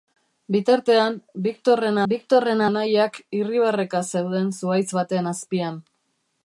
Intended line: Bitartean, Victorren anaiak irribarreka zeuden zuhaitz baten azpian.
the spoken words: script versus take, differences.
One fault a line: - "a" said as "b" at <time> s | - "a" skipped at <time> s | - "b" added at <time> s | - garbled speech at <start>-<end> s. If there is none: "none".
- "Victorren" added at 2.1 s